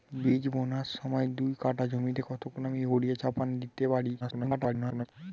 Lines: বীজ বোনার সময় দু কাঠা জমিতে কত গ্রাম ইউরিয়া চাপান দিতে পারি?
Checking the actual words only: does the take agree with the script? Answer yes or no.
no